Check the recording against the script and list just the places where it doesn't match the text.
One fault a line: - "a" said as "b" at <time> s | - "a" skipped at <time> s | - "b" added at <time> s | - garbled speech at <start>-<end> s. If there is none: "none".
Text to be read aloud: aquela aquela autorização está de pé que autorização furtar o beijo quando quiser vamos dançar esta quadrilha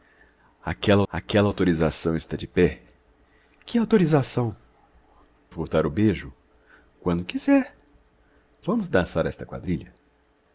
none